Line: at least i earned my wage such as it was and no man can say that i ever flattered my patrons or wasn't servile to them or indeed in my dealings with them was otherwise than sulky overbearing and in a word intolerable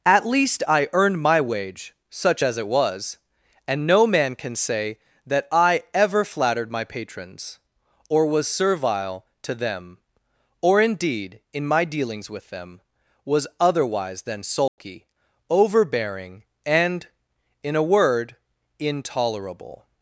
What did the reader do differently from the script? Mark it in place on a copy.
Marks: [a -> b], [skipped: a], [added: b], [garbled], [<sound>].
at least i earned my wage such as it was and no man can say that i ever flattered my patrons or [wasn't -> was] servile to them or indeed in my dealings with them was otherwise than sulky [dropout] overbearing and in a word intolerable